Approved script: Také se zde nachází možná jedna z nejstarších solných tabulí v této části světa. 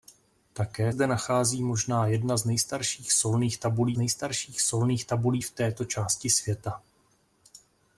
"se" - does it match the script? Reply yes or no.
no